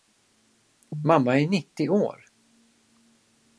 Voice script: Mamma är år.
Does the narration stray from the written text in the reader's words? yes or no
yes